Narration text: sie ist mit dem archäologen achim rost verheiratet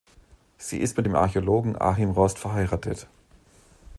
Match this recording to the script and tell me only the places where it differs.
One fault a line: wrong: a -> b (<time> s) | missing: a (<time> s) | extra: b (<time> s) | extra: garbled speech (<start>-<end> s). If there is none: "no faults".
no faults